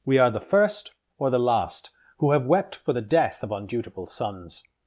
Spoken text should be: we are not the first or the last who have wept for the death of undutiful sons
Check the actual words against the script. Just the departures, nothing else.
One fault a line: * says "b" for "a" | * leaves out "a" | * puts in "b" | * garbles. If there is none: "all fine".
* leaves out "not"